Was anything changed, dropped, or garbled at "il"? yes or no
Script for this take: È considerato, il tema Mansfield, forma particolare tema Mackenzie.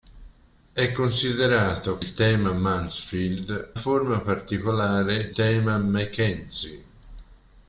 no